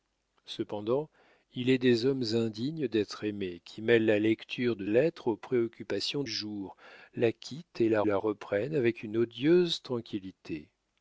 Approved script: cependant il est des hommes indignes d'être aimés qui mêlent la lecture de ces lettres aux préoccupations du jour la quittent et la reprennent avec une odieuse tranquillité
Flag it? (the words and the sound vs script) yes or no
yes